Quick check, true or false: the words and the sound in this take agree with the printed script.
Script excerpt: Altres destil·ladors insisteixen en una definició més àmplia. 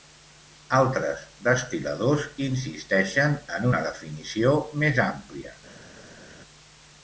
true